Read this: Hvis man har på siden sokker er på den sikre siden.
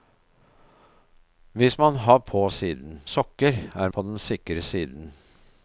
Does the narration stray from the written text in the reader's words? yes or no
no